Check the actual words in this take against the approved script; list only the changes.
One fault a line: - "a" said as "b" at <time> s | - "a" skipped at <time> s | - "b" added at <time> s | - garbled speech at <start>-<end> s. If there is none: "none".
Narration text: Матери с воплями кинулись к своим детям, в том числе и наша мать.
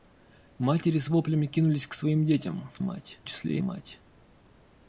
- "том" said as "мать" at 2.8 s
- "наша" skipped at 3.6 s